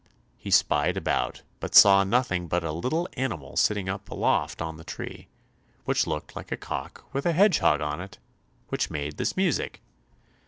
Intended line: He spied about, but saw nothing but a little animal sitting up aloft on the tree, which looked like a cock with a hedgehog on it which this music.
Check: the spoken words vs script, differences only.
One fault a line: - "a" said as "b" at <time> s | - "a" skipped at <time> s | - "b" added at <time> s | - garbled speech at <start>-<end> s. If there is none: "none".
- "made" added at 8.9 s